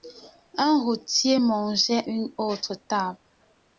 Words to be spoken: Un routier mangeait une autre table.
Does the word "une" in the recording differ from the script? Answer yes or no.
no